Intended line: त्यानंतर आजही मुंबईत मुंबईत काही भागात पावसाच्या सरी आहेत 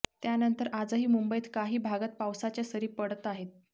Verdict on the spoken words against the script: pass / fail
fail